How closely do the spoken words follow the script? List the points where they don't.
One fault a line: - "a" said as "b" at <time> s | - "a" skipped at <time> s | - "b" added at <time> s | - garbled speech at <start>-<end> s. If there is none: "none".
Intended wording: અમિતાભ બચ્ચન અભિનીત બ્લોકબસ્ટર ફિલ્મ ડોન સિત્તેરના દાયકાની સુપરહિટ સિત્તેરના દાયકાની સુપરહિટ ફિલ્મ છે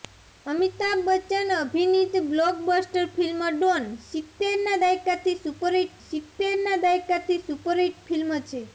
none